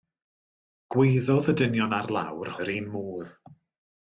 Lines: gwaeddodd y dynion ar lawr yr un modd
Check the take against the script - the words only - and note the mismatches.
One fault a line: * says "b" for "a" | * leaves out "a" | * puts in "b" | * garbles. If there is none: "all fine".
all fine